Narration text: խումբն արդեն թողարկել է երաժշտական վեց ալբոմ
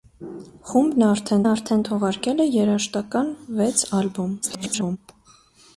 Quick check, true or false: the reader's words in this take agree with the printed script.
false